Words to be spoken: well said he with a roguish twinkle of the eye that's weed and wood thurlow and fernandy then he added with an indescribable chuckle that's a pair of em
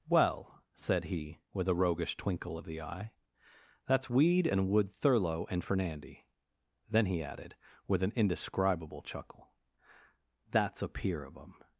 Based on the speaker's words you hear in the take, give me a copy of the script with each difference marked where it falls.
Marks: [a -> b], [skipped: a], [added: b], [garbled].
well said he with a roguish twinkle of the eye that's weed and wood thurlow and fernandy then he added with an indescribable chuckle that's a [pair -> peer] of em